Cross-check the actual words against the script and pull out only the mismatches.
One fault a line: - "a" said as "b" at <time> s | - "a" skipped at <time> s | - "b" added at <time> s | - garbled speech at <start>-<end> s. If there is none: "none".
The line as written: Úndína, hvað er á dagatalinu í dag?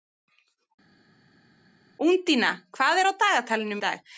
none